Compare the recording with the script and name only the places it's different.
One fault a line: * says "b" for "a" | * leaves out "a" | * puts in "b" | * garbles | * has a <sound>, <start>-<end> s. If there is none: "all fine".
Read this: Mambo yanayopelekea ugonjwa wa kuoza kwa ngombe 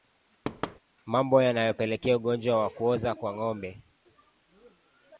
* has a thud, 0.4-0.8 s